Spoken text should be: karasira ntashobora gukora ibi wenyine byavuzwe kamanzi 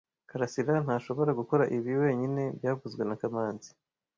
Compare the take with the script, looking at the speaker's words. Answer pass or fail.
fail